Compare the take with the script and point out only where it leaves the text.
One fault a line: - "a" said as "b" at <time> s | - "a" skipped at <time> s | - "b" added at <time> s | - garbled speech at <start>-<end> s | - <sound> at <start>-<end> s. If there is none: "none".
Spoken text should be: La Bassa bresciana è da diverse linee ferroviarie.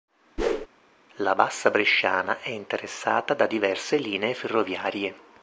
- whoosh at 0.4-0.7 s
- "interessata" added at 2.5 s